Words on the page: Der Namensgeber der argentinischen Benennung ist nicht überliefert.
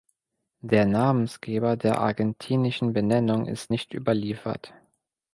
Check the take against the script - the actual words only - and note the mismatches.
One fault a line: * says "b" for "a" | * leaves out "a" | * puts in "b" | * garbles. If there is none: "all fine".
all fine